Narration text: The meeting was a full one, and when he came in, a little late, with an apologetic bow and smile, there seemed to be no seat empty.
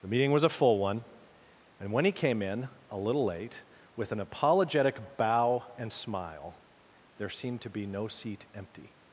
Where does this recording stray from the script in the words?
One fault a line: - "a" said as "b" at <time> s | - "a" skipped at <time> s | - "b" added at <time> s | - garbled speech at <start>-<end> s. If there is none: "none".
none